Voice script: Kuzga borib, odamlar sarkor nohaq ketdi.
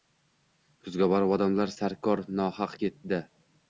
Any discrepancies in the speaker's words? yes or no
no